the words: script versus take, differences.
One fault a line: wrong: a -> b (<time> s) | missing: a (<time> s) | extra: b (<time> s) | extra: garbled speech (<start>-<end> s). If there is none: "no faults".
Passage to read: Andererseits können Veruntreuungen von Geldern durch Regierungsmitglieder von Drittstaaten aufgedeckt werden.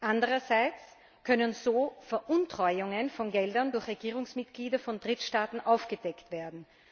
extra: so (1.5 s)